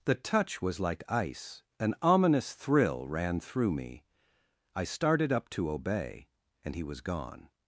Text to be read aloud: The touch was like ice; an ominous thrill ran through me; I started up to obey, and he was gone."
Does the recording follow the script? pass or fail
pass